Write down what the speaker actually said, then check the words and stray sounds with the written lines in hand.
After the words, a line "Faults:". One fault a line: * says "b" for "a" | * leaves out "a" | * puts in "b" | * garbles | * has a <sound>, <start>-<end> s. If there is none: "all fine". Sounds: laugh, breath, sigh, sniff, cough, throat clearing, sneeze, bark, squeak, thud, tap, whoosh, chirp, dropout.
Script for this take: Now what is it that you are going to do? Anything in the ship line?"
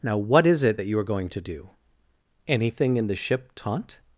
Now what is it that you are going to do? Anything in the ship taunt?"
Faults:
* says "taunt" for "line"